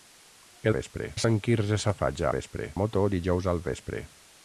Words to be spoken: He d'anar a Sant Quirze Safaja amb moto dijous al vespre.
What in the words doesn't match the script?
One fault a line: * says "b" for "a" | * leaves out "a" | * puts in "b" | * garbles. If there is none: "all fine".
* says "vespre" for "d'anar"
* says "vespre" for "amb"